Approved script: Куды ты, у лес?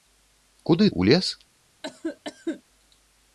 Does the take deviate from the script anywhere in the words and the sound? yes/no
yes